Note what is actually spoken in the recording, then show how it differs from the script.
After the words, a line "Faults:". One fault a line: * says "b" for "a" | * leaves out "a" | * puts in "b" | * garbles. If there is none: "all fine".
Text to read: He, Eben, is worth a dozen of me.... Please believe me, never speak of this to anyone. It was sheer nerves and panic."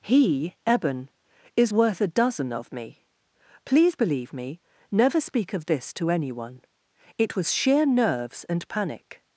He, Eben, is worth a dozen of me.... Please believe me, never speak of this to anyone. It was sheer nerves and panic."
Faults:
all fine